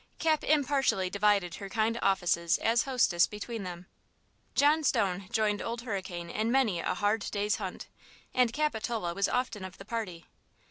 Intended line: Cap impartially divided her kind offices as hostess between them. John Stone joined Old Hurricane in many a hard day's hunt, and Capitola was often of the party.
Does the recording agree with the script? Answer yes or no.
yes